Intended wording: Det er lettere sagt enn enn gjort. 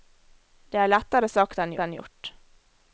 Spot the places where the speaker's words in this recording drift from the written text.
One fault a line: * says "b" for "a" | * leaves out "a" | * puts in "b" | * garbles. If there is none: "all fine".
all fine